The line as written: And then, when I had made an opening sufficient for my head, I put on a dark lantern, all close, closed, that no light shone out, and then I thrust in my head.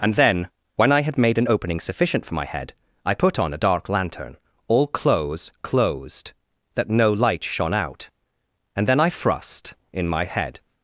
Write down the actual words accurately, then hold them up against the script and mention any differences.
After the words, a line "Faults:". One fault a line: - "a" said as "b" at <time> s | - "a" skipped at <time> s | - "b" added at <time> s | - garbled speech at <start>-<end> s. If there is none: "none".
And then, when I had made an opening sufficient for my head, I put on a dark lantern, all close, closed, that no light shone out, and then I thrust in my head.
Faults:
none